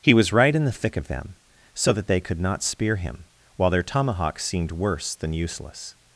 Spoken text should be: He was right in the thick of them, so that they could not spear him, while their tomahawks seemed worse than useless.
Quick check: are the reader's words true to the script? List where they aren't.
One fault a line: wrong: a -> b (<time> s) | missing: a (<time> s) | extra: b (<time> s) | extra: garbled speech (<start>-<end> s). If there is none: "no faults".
no faults